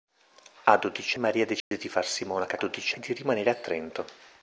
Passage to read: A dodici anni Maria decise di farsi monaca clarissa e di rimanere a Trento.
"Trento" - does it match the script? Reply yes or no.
yes